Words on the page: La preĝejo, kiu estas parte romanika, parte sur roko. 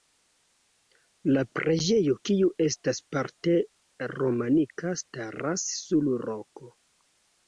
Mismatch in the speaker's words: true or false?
true